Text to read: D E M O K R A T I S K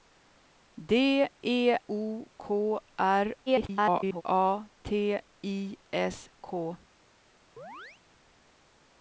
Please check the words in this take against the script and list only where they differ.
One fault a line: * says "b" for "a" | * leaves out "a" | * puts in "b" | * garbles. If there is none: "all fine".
* leaves out "M"
* garbles